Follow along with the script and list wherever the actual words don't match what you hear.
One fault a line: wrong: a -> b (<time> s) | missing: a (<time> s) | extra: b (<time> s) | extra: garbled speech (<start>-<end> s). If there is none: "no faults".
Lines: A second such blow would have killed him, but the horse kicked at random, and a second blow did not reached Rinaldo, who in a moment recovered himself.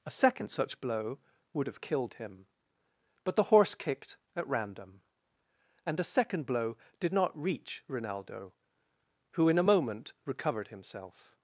wrong: reached -> reach (7.4 s)